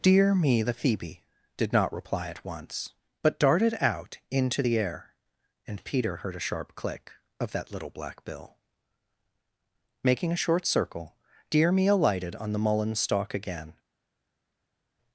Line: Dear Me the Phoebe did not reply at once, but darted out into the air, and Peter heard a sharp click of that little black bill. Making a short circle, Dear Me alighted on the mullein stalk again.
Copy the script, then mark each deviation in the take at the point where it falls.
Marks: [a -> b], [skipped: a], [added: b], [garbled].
Dear Me the Phoebe did not reply at once, but darted out into the air, and Peter heard a sharp click of that little black bill. Making a short circle, Dear Me alighted on the mullein stalk again.